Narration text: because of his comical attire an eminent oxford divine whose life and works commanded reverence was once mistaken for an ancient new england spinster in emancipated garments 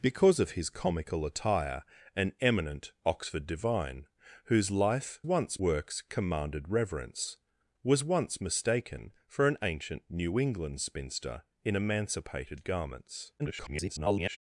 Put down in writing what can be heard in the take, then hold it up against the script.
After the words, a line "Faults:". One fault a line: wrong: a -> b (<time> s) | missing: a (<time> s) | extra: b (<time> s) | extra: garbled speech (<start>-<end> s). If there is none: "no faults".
because of his comical attire an eminent oxford divine whose life once works commanded reverence was once mistaken for an ancient new england spinster in emancipated garments [garbled]
Faults:
wrong: and -> once (5.2 s)
extra: garbled speech (13.4-14.4 s)